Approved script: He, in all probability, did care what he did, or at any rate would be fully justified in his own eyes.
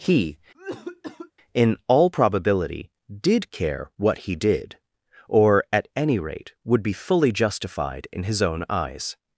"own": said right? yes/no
yes